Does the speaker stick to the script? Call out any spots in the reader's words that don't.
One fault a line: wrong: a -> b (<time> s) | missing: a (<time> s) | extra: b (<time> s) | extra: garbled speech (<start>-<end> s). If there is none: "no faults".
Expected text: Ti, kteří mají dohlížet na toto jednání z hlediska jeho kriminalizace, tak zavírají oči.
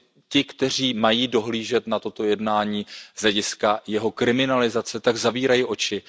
no faults